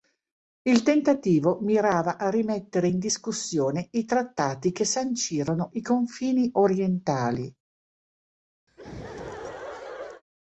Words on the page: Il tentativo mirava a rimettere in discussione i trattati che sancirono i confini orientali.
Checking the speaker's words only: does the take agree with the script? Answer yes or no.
yes